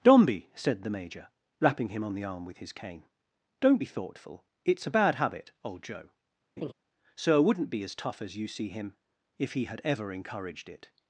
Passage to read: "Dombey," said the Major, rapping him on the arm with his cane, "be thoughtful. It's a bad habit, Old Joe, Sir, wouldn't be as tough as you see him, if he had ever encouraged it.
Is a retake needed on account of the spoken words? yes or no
yes